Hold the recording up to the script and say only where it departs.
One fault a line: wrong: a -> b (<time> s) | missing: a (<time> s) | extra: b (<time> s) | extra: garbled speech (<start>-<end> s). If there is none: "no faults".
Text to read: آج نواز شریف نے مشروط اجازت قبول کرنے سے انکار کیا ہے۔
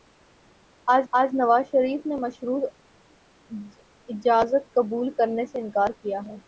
extra: آج (1.1 s)